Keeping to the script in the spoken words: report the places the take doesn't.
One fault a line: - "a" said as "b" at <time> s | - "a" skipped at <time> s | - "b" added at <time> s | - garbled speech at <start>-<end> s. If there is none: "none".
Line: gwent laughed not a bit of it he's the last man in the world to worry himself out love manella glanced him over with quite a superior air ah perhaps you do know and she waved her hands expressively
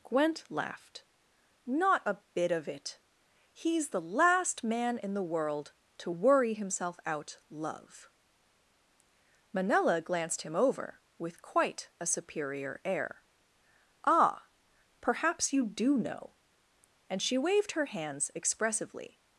none